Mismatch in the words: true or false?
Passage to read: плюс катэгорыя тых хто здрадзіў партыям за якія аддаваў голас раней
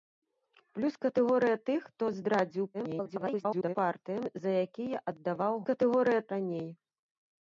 true